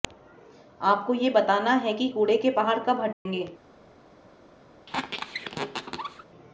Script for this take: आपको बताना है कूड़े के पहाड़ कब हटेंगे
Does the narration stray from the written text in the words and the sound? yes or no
yes